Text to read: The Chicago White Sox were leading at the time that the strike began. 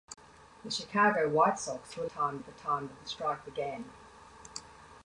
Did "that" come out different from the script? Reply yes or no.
no